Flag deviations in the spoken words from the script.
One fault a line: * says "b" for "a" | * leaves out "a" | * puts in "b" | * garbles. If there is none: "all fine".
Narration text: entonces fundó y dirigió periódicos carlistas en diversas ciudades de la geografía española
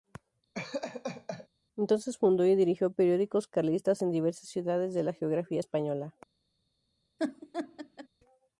all fine